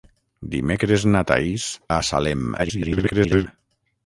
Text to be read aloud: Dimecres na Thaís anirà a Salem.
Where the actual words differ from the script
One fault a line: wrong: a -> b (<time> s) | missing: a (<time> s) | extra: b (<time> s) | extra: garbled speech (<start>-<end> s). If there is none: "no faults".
missing: anirà (1.7 s)
extra: garbled speech (2.6-3.5 s)